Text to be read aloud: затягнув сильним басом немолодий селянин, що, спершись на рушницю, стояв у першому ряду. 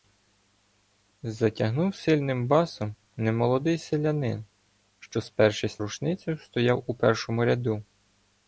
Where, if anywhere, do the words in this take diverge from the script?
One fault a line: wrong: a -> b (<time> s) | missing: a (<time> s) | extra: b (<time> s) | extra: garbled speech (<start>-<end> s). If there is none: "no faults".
missing: на (5.8 s)